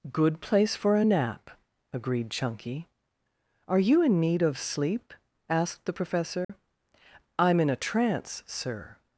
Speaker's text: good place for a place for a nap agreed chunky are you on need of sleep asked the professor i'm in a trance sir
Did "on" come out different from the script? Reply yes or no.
yes